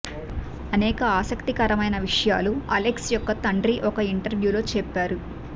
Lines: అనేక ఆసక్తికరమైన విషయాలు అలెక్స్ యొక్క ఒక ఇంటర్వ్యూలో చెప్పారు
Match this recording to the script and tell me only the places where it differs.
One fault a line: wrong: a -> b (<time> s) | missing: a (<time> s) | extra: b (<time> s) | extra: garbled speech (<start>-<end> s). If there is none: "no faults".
extra: తండ్రి (3.5 s)